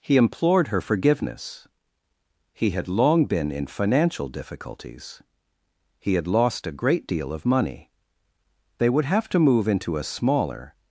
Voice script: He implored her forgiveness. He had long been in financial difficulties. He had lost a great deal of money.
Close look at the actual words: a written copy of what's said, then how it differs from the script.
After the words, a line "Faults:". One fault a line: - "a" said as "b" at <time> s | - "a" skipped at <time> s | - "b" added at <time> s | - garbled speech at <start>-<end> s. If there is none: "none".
He implored her forgiveness. He had long been in financial difficulties. He had lost a great deal of money. They would have to move into a smaller
Faults:
- "They would have to move into a smaller" added at 8.8 s